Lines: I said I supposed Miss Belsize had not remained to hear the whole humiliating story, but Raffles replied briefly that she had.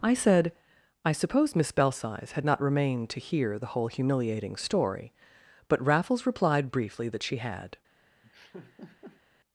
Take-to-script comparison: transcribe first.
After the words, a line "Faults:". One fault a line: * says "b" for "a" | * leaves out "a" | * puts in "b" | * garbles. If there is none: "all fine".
I said I suppose Miss Belsize had not remained to hear the whole humiliating story, but Raffles replied briefly that she had.
Faults:
* says "suppose" for "supposed"